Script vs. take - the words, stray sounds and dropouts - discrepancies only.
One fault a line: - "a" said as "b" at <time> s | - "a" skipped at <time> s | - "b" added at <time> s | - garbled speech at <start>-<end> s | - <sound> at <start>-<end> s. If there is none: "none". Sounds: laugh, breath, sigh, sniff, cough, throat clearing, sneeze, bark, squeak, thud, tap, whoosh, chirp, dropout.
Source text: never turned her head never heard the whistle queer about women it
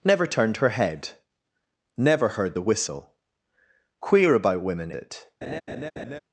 - laugh at 5.4-6.2 s